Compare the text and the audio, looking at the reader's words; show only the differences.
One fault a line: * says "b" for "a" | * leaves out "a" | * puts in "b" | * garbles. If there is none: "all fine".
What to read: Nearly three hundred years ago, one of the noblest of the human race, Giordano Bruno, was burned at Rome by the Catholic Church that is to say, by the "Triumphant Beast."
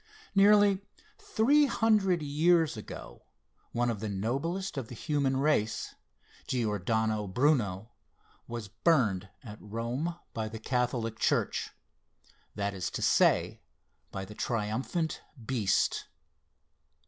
all fine